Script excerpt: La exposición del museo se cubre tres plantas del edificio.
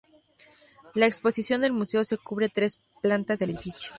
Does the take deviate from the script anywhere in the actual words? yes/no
no